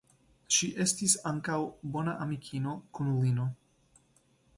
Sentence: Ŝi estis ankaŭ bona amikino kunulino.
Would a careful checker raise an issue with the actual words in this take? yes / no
no